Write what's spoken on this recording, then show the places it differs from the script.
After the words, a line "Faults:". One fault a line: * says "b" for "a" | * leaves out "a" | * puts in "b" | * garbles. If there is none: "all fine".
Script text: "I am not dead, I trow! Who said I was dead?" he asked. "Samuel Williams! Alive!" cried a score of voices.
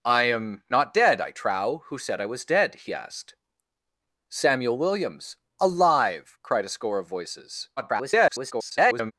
"I am not dead, I trow! Who said I was dead?" he asked. "Samuel Williams! Alive!" cried a score of voices. [garbled]
Faults:
* garbles